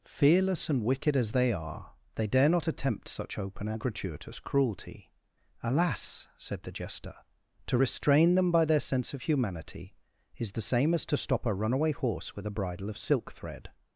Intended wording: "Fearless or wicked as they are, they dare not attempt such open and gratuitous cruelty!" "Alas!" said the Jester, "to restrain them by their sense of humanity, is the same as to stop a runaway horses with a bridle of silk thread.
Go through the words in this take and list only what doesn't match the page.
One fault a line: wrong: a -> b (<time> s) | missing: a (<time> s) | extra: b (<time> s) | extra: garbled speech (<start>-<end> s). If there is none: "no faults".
wrong: or -> and (0.7 s)
wrong: horses -> horse (11.9 s)